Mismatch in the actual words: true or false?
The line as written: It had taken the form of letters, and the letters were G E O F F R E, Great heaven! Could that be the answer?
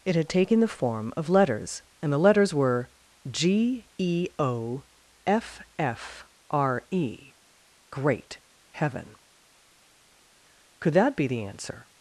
false